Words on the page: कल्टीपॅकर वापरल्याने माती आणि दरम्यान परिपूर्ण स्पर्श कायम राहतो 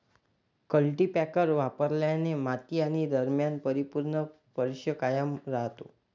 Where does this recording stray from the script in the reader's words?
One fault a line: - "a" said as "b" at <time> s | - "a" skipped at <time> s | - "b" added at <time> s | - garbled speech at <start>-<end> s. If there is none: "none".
none